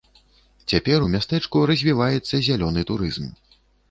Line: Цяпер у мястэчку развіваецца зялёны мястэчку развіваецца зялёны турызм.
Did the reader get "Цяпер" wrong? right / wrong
right